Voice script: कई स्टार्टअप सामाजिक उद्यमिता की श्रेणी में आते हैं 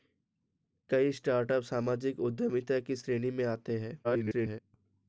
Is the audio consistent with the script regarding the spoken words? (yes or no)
no